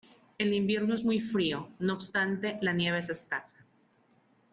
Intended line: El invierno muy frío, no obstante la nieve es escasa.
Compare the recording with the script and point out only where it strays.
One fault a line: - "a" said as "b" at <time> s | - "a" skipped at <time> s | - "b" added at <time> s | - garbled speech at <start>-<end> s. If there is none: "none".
- "es" added at 0.9 s